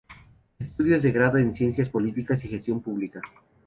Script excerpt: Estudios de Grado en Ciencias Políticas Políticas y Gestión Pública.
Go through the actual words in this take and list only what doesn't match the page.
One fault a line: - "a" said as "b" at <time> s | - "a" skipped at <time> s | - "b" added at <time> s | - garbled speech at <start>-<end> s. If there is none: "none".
- "Políticas" skipped at 2.4 s